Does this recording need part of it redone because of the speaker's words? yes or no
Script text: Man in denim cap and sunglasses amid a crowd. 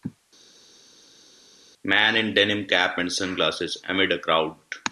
no